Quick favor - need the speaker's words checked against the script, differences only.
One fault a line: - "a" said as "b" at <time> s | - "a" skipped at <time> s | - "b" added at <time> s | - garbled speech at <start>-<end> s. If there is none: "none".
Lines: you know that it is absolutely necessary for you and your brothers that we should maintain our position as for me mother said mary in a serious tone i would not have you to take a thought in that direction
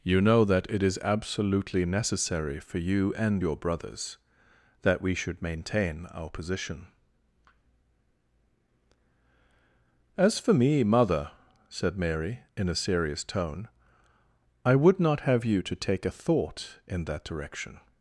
none